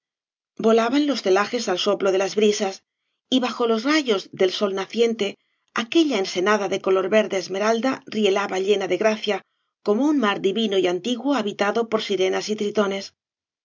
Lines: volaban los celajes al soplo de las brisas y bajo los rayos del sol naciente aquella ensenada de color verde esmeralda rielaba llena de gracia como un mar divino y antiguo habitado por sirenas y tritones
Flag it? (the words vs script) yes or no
no